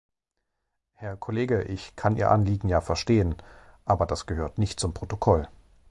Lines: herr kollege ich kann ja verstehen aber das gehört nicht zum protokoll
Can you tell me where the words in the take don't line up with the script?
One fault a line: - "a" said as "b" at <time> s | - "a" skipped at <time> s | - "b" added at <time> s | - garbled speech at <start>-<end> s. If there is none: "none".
- "ihr anliegen" added at 2.1 s